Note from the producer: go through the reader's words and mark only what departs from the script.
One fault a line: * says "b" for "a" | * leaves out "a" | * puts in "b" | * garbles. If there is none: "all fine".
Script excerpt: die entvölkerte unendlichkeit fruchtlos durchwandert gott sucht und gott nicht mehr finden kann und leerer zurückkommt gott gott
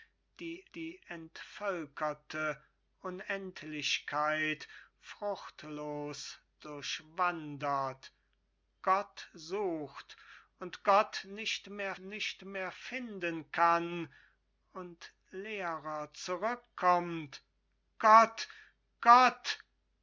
* puts in "die"
* puts in "nicht mehr"